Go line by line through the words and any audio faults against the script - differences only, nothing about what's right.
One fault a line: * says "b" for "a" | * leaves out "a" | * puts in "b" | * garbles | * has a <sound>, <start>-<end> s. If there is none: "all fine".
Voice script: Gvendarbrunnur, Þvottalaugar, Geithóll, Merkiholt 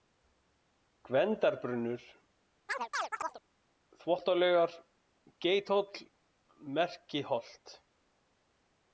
* has a chirp, 2.7-3.4 s